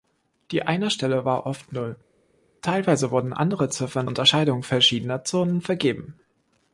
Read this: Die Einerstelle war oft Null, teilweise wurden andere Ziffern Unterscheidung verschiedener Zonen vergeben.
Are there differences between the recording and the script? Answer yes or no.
no